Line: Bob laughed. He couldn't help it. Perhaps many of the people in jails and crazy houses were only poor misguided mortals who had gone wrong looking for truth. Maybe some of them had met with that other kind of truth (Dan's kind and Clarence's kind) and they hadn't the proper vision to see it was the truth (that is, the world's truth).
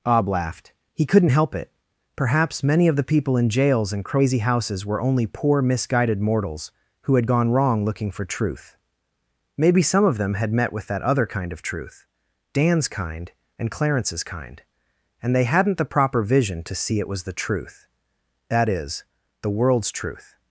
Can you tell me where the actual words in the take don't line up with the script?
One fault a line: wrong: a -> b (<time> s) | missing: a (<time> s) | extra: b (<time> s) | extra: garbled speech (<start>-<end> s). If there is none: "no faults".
wrong: Bob -> Ob (0.1 s)